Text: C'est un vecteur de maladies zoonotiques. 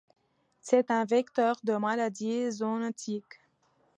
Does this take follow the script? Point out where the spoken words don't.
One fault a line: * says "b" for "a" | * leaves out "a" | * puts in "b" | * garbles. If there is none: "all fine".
all fine